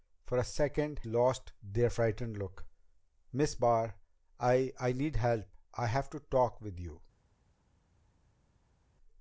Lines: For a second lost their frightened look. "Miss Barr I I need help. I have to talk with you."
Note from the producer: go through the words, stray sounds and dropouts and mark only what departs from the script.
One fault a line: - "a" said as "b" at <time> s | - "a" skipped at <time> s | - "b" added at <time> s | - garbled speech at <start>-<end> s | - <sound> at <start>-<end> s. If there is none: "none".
none